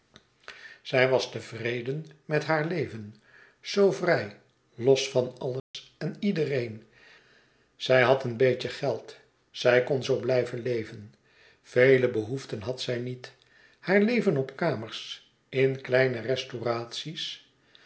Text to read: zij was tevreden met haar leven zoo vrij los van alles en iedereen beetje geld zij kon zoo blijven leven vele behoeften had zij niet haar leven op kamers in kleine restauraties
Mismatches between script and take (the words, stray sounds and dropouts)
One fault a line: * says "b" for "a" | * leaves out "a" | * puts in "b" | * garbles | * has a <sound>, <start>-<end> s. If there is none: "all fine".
* has a dropout, 5.6-5.7 s
* puts in "zij had een"